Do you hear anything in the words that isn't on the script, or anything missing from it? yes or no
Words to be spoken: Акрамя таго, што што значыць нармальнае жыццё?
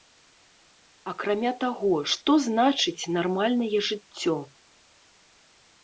yes